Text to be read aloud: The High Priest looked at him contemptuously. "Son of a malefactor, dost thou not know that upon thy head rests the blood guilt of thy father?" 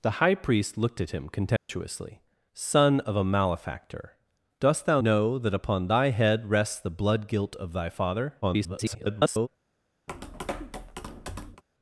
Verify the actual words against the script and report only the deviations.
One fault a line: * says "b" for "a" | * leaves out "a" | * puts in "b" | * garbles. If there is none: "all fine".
* leaves out "not"
* garbles